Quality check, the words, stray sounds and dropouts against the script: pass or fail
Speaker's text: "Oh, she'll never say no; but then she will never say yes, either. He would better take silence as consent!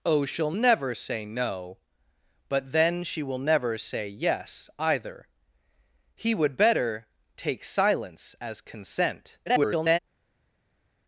fail